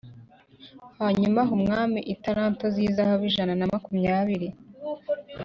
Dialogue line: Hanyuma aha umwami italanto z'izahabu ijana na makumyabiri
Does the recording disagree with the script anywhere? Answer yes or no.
no